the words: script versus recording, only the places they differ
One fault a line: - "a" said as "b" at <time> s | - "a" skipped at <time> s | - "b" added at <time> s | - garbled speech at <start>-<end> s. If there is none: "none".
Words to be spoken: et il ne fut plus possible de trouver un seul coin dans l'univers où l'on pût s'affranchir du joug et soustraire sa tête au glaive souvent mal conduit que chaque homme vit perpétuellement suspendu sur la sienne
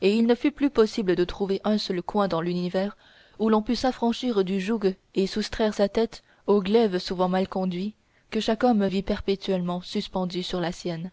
none